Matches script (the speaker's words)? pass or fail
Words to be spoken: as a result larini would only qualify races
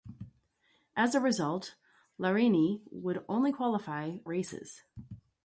pass